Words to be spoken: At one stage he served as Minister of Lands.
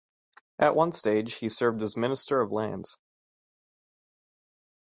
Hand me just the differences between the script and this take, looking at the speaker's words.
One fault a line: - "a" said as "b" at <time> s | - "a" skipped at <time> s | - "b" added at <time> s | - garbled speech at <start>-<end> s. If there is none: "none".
none